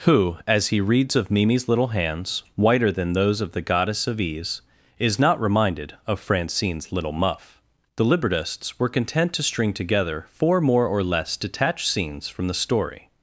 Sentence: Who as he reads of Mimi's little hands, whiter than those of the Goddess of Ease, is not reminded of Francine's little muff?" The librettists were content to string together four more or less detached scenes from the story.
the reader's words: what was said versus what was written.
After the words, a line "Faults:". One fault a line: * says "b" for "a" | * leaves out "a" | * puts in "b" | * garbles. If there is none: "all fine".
Who as he reads of Mimi's little hands, whiter than those of the Goddess of Ease, is not reminded of Francine's little muff?" The librettists were content to string together four more or less detached scenes from the story.
Faults:
all fine